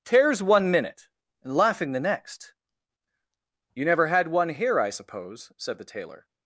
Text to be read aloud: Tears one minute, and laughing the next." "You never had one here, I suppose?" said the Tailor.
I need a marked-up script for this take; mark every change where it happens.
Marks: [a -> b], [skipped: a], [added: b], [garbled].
Tears one minute, and laughing the next." "You never had one here, I suppose?" said the Tailor.